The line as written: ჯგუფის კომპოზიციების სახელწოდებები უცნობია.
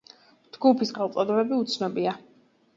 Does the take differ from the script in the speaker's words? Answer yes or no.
yes